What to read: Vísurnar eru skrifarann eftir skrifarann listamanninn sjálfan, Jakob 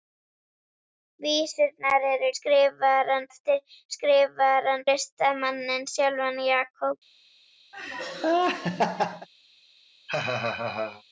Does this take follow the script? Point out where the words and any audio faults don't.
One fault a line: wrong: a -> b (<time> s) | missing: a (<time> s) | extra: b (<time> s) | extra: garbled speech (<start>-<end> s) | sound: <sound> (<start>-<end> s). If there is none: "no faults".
sound: laugh (7.7-9.3 s)
sound: laugh (10.1-11.0 s)